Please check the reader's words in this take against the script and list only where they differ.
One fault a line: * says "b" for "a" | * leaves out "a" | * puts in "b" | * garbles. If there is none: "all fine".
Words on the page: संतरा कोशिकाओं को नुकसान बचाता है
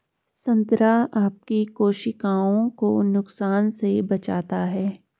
* puts in "आपकी"
* puts in "से"